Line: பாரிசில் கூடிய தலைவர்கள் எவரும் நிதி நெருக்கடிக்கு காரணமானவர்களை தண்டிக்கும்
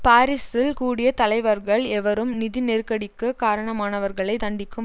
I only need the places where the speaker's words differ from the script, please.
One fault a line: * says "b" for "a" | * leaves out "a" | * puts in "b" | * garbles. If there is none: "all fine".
all fine